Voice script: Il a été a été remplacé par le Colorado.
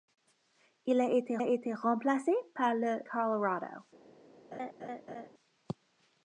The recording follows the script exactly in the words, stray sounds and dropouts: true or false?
false